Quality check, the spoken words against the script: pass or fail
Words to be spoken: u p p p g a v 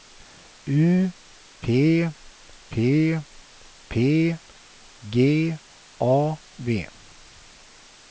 pass